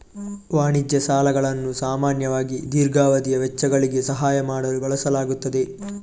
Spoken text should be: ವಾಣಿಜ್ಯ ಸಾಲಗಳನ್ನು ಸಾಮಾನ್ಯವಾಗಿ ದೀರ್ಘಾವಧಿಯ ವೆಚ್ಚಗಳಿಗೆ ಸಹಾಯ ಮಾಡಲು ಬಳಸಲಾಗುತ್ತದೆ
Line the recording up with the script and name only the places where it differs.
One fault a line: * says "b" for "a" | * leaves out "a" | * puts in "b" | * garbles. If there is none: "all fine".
all fine